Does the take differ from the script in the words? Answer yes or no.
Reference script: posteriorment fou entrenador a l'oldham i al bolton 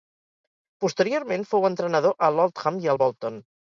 no